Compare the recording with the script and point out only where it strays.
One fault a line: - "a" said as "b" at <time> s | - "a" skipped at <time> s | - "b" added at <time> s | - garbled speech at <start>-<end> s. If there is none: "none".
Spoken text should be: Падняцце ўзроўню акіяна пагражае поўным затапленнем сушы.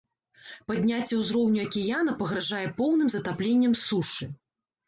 none